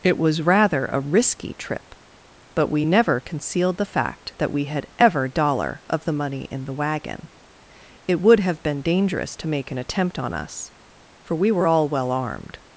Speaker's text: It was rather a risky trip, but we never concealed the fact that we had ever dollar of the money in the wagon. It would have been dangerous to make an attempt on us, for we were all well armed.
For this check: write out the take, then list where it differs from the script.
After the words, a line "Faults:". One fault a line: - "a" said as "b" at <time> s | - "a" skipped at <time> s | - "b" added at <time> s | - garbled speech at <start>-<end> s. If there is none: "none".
It was rather a risky trip, but we never concealed the fact that we had ever dollar of the money in the wagon. It would have been dangerous to make an attempt on us, for we were all well armed.
Faults:
none